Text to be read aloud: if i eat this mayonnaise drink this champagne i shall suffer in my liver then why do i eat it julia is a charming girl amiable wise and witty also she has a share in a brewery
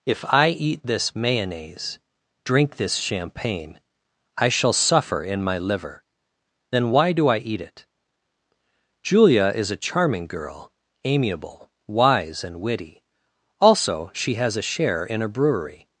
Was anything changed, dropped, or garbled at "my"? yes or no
no